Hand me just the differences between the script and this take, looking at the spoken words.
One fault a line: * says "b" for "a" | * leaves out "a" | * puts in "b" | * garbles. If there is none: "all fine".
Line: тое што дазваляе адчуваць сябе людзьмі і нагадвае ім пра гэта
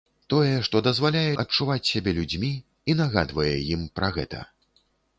all fine